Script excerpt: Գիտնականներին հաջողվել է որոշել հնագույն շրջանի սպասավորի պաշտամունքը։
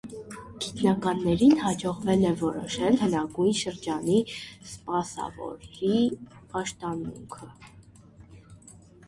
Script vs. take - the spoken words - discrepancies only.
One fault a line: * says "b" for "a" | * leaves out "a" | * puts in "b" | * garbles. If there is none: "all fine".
all fine